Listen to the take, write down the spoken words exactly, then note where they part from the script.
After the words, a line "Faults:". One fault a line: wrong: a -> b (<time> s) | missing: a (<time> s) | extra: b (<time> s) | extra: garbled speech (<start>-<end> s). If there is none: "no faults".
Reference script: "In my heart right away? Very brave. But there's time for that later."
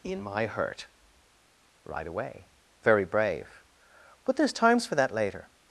"In my hurt right away? Very brave. But there's times for that later."
Faults:
wrong: heart -> hurt (0.5 s)
wrong: time -> times (4.5 s)